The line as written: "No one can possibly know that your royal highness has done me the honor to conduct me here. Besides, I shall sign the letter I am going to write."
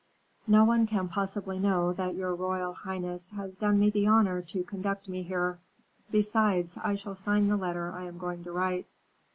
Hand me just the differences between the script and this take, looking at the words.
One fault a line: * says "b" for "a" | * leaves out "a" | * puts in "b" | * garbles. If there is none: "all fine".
all fine